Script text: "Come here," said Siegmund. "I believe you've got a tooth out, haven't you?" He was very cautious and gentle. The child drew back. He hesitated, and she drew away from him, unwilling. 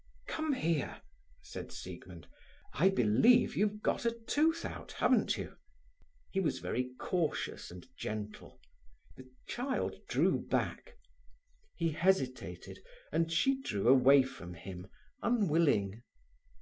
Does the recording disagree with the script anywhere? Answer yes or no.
no